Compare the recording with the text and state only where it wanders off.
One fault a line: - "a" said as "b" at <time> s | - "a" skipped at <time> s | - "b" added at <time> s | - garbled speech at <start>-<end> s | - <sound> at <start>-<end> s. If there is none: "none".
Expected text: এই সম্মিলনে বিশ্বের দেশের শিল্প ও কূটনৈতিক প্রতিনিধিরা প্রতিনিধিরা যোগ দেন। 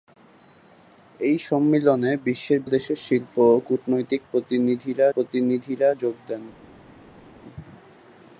none